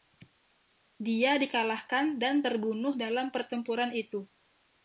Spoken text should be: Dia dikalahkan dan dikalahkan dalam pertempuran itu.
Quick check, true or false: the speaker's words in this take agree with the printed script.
false